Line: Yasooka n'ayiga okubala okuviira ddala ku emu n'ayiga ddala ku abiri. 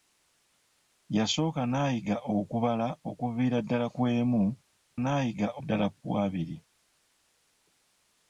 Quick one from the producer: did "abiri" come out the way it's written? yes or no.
yes